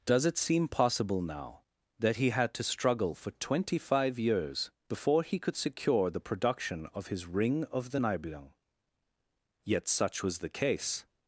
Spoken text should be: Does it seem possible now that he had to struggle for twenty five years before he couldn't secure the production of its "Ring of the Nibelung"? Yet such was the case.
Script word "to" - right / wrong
right